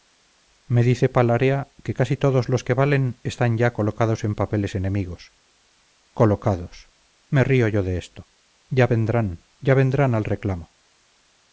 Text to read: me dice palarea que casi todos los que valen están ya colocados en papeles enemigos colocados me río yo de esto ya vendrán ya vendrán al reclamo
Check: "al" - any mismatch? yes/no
no